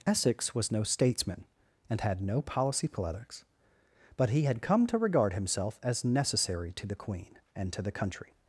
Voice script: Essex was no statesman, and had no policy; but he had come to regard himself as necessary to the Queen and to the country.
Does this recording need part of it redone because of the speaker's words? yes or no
yes